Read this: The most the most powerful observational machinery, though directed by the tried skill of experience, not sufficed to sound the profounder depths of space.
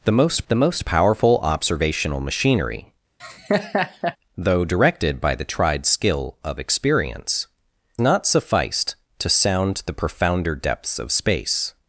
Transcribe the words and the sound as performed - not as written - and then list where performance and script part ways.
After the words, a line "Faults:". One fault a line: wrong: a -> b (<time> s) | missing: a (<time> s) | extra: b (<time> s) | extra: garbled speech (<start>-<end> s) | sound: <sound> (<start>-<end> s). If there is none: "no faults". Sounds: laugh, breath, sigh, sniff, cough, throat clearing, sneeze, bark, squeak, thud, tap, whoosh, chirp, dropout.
The most the most powerful observational machinery, though directed by the tried skill of experience, not sufficed to sound the profounder depths of space.
Faults:
sound: laugh (3.2-4.2 s)